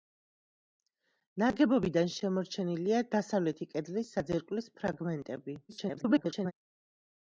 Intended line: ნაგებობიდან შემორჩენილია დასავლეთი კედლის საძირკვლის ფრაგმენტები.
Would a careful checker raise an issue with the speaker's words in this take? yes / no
yes